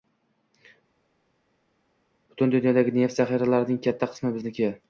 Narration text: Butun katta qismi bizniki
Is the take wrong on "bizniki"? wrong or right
right